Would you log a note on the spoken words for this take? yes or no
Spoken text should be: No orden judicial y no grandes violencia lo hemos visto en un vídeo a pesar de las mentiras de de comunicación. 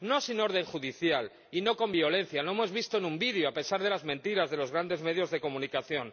yes